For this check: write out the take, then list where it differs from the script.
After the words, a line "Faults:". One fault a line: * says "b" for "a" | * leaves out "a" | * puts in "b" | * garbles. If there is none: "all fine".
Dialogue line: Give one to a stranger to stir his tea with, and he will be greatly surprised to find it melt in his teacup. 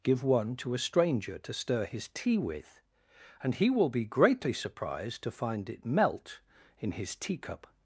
Give one to a stranger to stir his tea with, and he will be greatly surprised to find it melt in his teacup.
Faults:
all fine